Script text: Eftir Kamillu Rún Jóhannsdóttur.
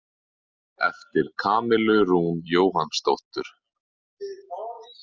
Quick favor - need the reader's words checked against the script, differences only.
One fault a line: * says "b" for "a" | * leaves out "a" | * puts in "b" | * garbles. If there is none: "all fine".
all fine